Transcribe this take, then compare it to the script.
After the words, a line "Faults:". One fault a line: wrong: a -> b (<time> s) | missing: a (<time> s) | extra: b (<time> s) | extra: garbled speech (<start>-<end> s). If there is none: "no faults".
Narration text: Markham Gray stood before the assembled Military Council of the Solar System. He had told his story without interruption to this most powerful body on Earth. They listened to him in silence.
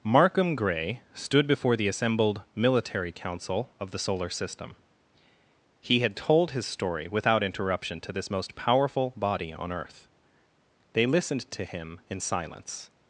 Markham Gray stood before the assembled Military Council of the Solar System. He had told his story without interruption to this most powerful body on Earth. They listened to him in silence.
Faults:
no faults